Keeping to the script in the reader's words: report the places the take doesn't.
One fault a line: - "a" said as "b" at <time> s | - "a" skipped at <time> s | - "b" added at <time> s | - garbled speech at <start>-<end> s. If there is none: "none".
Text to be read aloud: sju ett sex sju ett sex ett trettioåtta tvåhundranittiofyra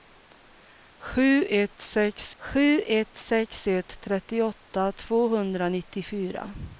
none